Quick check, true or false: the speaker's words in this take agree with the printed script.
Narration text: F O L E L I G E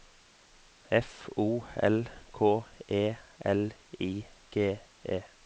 false